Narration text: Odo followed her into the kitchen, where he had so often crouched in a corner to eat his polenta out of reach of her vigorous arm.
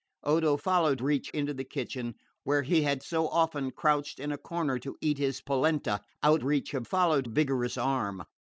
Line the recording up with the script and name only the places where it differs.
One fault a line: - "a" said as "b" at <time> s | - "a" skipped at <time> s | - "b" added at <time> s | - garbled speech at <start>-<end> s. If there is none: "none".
- "her" said as "reach" at 1.0 s
- "of" skipped at 6.4 s
- "her" said as "followed" at 6.8 s